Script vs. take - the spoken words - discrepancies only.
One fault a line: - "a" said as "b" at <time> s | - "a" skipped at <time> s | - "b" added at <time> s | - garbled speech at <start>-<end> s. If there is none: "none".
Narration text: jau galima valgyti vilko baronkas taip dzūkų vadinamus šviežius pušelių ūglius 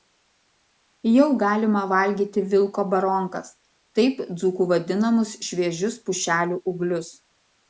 none